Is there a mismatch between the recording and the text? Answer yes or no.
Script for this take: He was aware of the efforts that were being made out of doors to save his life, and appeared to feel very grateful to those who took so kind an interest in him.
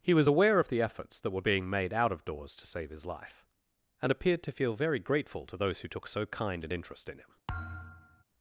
no